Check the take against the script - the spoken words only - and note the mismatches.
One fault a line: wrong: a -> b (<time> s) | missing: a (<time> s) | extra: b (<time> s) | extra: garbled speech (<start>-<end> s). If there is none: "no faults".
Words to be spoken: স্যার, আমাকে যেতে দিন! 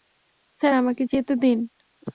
no faults